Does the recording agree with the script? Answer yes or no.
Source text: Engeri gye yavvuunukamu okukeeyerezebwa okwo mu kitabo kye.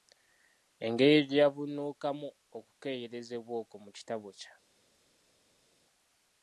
yes